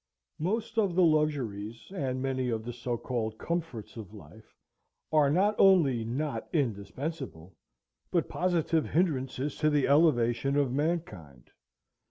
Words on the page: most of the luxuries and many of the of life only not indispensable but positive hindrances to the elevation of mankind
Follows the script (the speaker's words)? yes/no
no